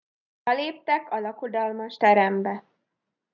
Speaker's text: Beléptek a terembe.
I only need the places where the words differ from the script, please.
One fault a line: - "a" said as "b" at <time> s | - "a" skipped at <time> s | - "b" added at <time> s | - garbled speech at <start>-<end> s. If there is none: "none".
- "lakodalmas" added at 1.2 s